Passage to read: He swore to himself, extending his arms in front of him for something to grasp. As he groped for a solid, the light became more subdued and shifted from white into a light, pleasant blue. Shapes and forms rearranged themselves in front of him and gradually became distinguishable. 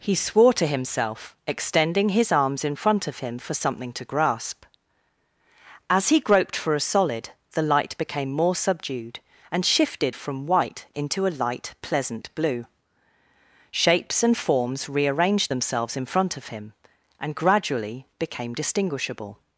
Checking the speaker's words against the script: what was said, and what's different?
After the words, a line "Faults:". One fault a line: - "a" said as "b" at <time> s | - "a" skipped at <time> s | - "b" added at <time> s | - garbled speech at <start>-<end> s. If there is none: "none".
He swore to himself, extending his arms in front of him for something to grasp. As he groped for a solid, the light became more subdued and shifted from white into a light, pleasant blue. Shapes and forms rearranged themselves in front of him and gradually became distinguishable.
Faults:
none